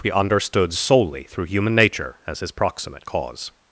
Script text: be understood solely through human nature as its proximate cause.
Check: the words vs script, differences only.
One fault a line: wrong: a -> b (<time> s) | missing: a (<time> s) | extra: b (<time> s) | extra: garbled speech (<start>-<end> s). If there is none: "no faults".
wrong: its -> his (2.4 s)